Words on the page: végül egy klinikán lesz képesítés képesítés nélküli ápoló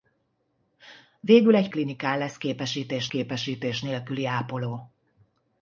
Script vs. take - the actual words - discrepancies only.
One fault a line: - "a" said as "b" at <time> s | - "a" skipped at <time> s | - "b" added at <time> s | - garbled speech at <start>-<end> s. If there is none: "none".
none